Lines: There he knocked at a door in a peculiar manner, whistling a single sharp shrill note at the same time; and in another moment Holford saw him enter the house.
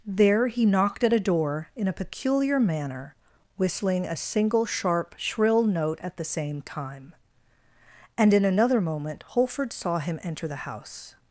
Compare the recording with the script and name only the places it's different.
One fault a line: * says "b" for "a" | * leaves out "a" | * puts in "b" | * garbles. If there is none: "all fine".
all fine